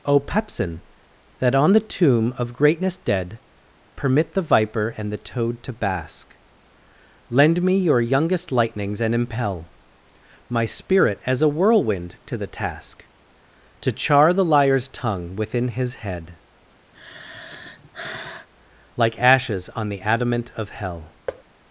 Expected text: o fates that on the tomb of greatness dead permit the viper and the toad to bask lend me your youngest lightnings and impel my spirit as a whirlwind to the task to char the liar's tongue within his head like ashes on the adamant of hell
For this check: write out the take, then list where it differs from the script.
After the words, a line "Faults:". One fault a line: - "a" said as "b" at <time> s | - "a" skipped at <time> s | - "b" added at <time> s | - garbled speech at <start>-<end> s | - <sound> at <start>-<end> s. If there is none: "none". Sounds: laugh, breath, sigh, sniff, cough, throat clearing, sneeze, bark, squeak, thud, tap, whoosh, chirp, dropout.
o pepsin that on the tomb of greatness dead permit the viper and the toad to bask lend me your youngest lightnings and impel my spirit as a whirlwind to the task to char the liar's tongue within his head like ashes on the adamant of hell
Faults:
- "fates" said as "pepsin" at 0.2 s
- sigh at 16.9-18.5 s
- thud at 21.3-21.4 s